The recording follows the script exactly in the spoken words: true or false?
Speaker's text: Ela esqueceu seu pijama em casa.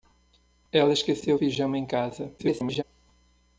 false